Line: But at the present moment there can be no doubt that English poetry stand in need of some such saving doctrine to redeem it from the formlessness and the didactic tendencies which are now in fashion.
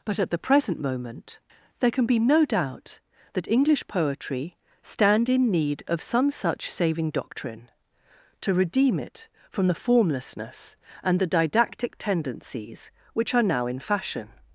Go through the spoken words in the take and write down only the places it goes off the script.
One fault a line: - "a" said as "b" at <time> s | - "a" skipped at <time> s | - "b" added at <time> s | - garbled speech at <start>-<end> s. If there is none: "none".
none